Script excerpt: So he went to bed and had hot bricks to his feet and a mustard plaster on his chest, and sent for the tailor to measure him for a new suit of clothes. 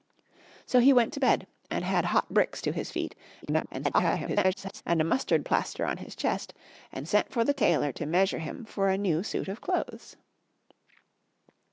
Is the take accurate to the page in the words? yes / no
no